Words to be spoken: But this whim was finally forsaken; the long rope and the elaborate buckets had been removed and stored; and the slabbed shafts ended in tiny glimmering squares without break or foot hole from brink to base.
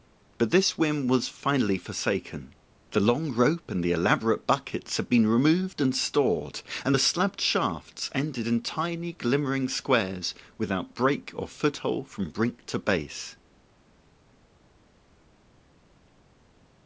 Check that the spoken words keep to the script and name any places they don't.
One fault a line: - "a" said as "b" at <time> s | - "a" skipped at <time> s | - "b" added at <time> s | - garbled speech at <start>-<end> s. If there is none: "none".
none